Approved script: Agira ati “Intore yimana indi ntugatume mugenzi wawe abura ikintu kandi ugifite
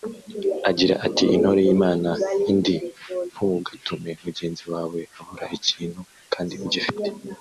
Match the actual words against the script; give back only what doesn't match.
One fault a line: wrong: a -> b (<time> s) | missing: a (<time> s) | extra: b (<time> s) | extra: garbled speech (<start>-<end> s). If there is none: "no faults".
no faults